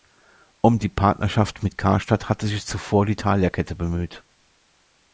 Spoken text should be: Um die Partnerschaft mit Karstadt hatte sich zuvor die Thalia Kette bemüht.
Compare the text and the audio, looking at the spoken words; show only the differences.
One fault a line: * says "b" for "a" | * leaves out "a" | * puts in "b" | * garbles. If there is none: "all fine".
all fine